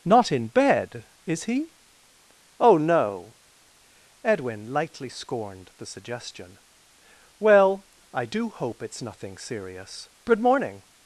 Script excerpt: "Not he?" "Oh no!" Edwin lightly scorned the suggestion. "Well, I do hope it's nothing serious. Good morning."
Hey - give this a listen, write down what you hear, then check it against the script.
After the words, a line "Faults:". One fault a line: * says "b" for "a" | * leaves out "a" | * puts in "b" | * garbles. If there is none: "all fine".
"Not in bed, is he?" "Oh no!" Edwin lightly scorned the suggestion. "Well, I do hope it's nothing serious. Good morning."
Faults:
* puts in "in bed is"